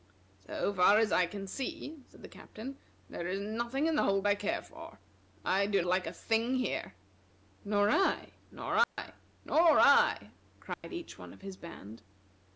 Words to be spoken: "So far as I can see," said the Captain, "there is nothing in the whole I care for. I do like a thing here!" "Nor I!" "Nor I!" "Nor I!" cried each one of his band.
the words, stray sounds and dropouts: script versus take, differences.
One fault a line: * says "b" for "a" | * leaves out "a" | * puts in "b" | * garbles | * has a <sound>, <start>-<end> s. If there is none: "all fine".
* has a dropout, 8.8-9.0 s
* has a dropout, 10.7-10.8 s